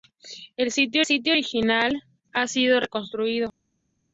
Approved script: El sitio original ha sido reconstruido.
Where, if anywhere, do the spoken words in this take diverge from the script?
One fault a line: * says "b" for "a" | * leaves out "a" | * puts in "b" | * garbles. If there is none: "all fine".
* puts in "sitio"